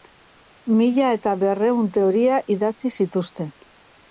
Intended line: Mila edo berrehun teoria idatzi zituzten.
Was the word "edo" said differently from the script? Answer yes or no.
yes